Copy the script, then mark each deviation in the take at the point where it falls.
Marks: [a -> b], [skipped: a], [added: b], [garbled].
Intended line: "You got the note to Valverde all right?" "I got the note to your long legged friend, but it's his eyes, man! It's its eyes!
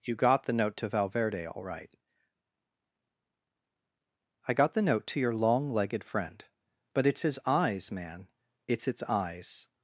"You got the note to Valverde all right?" "I got the note to your long legged friend, but it's his eyes, man! It's its eyes!